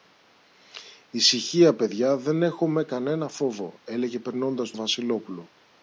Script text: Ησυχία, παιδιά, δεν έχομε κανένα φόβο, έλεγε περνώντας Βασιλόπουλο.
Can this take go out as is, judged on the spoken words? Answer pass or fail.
pass